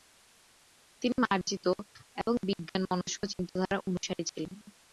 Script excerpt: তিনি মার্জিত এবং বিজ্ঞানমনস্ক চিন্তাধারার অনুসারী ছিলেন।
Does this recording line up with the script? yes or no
yes